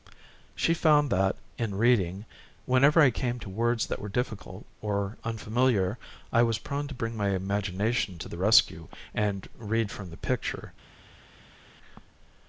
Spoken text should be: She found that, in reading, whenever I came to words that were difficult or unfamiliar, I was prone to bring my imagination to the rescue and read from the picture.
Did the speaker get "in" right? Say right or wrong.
right